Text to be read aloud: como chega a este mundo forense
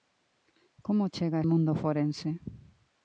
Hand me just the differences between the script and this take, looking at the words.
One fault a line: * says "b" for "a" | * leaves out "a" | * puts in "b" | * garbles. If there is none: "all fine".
* leaves out "este"